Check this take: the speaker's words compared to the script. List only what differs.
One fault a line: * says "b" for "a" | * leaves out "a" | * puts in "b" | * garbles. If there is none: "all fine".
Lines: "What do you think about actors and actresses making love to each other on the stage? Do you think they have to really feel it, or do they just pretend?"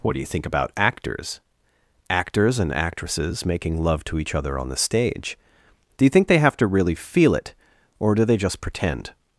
* puts in "actors"